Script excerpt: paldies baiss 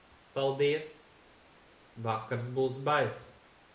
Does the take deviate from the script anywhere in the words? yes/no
yes